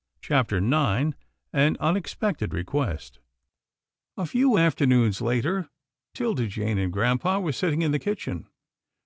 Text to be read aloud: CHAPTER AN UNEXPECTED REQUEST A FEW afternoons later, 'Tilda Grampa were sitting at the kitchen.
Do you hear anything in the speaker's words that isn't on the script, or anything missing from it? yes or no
yes